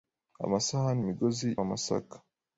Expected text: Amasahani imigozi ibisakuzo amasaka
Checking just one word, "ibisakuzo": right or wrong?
wrong